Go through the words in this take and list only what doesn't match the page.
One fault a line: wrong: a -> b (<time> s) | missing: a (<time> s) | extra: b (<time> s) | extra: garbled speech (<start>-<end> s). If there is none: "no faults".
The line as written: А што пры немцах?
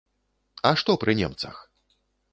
no faults